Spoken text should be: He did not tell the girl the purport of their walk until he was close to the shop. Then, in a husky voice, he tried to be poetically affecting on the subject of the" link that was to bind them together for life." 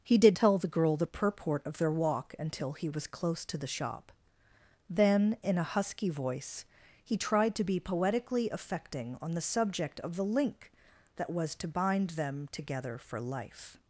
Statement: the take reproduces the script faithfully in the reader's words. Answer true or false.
false